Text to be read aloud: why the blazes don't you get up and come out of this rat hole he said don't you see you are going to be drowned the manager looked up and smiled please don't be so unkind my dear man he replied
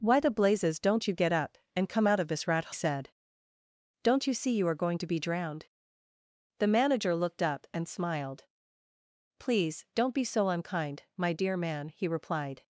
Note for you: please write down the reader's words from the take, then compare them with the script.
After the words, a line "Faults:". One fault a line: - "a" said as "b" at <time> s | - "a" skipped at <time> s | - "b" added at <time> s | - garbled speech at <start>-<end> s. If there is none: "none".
why the blazes don't you get up and come out of this rat said don't you see you are going to be drowned the manager looked up and smiled please don't be so unkind my dear man he replied
Faults:
- "hole he" skipped at 2.7 s